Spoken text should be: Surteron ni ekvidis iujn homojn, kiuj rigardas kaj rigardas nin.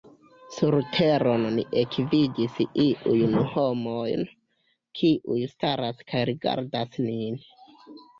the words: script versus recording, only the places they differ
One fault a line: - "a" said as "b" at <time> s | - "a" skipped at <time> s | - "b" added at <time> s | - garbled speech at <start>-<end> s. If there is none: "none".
- "rigardas" said as "staras" at 5.5 s